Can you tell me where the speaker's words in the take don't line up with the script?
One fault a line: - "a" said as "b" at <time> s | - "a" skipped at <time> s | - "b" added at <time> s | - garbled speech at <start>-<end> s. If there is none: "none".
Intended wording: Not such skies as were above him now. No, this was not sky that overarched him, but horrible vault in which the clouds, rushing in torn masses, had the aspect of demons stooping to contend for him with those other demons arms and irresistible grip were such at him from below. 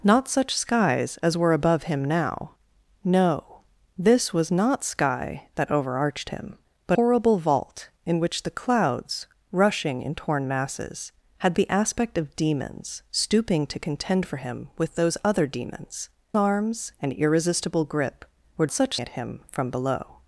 none